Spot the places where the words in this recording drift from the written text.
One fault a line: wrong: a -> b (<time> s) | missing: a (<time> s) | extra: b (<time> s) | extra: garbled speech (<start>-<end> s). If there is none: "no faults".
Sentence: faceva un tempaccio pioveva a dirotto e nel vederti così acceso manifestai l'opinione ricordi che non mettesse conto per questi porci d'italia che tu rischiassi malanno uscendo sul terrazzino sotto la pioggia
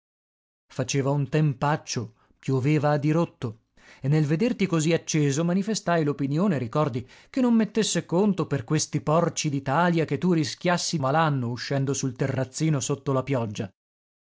no faults